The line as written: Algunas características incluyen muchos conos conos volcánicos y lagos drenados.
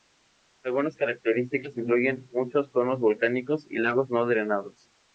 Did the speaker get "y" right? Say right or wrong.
right